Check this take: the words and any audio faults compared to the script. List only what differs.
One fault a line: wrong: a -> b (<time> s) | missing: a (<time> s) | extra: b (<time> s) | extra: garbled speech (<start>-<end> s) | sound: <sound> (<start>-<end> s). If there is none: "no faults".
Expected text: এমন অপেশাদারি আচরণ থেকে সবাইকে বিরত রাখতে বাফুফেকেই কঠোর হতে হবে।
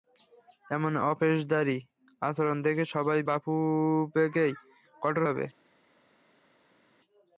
missing: বিরত রাখতে (3.3 s)
missing: হতে (5.2 s)